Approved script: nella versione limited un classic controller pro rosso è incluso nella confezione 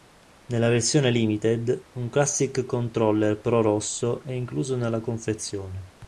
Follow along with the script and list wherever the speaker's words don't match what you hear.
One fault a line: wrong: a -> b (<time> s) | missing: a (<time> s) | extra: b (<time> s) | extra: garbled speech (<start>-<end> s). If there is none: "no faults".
no faults